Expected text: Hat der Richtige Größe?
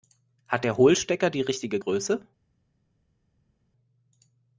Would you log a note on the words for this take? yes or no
yes